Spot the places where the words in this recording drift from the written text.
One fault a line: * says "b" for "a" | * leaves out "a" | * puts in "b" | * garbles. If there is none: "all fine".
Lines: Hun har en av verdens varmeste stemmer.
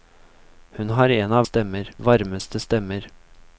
* says "stemmer" for "verdens"